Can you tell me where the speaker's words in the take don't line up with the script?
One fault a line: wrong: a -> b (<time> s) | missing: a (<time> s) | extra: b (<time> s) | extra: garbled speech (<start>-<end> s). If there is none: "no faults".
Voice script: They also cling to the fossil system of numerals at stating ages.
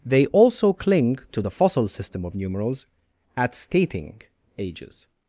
no faults